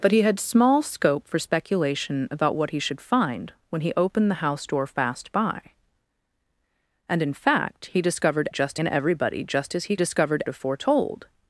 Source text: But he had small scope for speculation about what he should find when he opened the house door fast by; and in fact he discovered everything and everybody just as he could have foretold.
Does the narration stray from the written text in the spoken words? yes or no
yes